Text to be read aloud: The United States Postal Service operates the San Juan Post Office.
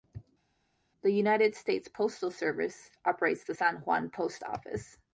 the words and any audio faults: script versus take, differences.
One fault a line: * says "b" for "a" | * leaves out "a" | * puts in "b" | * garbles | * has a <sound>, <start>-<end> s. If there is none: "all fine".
all fine